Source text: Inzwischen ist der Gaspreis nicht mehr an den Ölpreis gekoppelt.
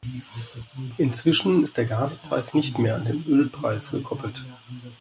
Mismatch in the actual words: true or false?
false